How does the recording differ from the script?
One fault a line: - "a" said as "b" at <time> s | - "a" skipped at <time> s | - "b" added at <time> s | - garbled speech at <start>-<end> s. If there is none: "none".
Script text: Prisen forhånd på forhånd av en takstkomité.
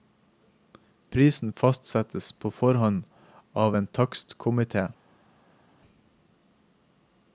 - "forhånd" said as "fastsettes" at 1.5 s